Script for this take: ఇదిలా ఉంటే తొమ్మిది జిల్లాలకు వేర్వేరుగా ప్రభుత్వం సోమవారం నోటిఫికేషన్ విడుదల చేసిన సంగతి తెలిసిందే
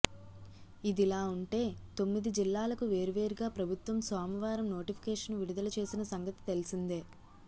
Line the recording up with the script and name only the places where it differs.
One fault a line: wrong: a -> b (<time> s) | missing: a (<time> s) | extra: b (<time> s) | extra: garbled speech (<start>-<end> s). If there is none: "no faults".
no faults